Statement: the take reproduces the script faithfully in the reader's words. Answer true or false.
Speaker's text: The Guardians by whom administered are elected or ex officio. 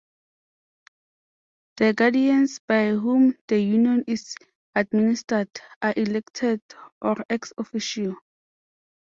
false